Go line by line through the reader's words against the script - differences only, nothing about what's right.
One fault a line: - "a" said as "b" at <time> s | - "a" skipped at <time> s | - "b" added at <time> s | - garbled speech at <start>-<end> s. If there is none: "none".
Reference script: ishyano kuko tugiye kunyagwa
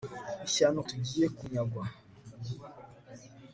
- "kuko" skipped at 0.8 s